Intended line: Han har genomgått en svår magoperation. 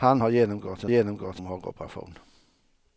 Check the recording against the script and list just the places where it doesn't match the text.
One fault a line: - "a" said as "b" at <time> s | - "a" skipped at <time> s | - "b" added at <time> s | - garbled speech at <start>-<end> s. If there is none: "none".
- "svår" said as "genomgått" at 0.9 s